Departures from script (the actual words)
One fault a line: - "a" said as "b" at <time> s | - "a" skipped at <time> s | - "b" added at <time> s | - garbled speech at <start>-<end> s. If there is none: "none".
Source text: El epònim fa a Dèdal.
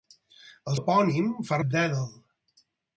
none